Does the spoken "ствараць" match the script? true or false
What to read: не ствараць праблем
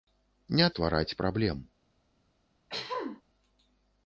true